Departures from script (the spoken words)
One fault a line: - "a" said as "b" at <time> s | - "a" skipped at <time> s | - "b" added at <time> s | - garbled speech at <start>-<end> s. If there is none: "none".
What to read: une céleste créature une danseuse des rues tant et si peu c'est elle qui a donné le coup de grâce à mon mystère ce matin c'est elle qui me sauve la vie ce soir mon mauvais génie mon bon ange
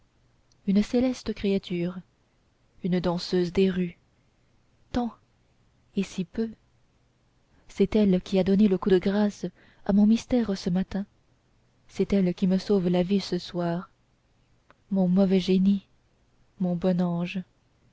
none